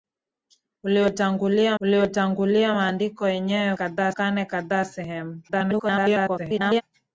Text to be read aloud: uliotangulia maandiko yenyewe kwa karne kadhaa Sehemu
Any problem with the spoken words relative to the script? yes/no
yes